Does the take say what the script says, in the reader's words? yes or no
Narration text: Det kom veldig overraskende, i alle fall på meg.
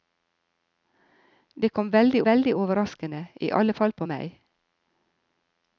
no